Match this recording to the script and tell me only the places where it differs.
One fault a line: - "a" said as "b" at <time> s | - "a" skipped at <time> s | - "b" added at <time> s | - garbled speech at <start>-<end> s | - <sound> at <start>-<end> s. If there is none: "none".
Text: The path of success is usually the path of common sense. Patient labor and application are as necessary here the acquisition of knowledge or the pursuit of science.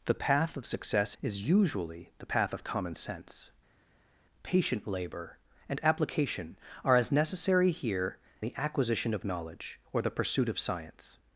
none